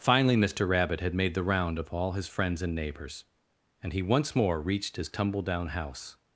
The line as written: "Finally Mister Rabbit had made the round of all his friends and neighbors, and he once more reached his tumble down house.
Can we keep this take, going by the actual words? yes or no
yes